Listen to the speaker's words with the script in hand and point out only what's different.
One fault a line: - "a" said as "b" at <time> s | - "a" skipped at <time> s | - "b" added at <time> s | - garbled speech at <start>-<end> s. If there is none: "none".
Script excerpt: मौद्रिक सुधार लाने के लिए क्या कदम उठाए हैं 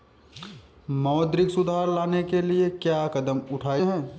none